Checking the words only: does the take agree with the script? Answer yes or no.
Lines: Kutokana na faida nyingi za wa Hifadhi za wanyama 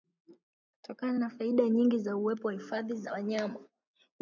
no